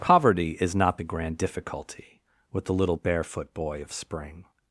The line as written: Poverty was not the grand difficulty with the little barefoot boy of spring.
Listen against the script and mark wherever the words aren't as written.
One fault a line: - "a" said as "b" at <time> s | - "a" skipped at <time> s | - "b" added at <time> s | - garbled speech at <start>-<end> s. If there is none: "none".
- "was" said as "is" at 0.6 s